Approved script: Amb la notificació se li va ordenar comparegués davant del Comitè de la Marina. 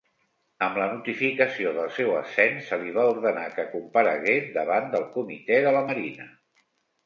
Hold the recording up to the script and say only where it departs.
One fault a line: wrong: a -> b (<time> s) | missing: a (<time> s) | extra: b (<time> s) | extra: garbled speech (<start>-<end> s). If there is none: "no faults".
extra: del seu ascens (1.8 s)
extra: que (3.6 s)